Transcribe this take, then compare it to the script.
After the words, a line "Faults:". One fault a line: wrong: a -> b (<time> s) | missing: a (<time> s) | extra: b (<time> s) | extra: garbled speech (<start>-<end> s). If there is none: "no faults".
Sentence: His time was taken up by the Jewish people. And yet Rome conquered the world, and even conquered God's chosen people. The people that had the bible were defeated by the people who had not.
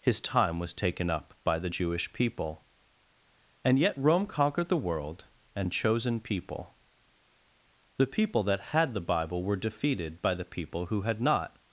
His time was taken up by the Jewish people. And yet Rome conquered the world, and chosen people. The people that had the bible were defeated by the people who had not.
Faults:
missing: even conquered God's (5.7 s)